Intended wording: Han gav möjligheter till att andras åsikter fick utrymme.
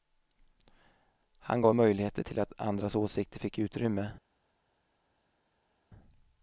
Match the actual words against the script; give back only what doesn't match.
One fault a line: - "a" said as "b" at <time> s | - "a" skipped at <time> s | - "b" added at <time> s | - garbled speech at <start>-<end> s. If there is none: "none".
none